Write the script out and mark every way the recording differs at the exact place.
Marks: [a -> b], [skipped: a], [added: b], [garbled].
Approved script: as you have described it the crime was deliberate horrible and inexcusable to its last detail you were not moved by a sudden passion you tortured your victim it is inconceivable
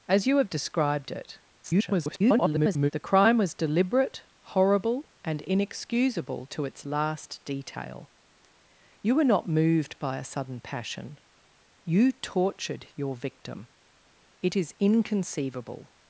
as you have described it [garbled] the crime was deliberate horrible and inexcusable to its last detail you were not moved by a sudden passion you tortured your victim it is inconceivable